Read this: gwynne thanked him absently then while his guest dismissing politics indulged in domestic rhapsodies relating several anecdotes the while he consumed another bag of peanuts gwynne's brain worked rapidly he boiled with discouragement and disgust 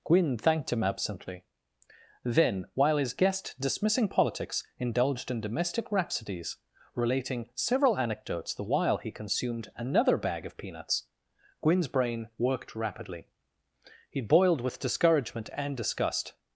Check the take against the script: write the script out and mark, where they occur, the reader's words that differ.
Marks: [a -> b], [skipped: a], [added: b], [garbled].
gwynne thanked him absently then while his guest dismissing politics indulged in domestic rhapsodies relating several anecdotes the while he consumed another bag of peanuts gwynne's brain worked rapidly he boiled with discouragement and disgust